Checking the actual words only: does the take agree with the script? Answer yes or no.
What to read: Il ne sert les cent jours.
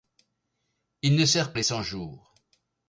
yes